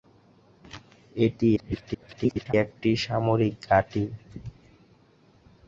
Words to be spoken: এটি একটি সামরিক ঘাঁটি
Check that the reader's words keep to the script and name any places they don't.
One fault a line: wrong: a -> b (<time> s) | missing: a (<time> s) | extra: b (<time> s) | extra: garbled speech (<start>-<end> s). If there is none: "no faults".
extra: garbled speech (1.6-2.5 s)